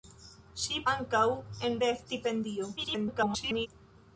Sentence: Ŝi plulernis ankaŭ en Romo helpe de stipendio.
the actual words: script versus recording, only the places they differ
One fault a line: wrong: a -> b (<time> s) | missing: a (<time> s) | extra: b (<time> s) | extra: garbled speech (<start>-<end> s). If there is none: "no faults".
missing: plulernis (0.8 s)
missing: Romo helpe (1.8 s)
extra: garbled speech (2.8-3.7 s)